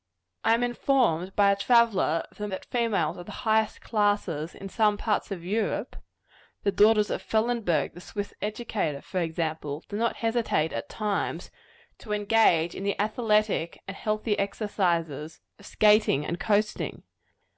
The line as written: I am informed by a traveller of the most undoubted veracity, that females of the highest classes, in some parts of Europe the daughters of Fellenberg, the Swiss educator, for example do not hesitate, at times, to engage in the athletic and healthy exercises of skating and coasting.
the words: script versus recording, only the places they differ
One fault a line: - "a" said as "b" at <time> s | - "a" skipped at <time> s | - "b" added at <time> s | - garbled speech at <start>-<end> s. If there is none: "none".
- "most undoubted veracity" skipped at 2.5 s